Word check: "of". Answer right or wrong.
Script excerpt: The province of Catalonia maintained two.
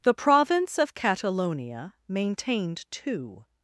right